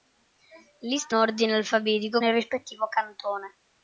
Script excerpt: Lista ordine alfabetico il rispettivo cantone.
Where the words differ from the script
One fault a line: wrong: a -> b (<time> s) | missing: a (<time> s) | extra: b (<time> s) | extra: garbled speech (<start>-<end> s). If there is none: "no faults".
no faults